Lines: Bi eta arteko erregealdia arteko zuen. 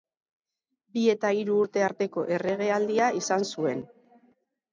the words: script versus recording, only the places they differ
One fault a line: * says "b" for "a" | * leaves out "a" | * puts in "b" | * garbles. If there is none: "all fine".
* puts in "hiru urte"
* says "izan" for "arteko"